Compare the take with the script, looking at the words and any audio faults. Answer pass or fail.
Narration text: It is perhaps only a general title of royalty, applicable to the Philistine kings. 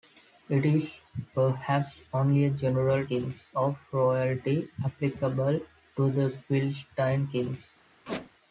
fail